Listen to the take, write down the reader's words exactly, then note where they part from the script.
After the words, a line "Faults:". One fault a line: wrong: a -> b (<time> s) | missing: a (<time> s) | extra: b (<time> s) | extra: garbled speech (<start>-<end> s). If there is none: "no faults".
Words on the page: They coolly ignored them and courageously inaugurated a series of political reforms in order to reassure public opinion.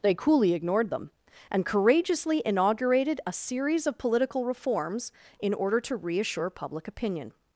They coolly ignored them and courageously inaugurated a series of political reforms in order to reassure public opinion.
Faults:
no faults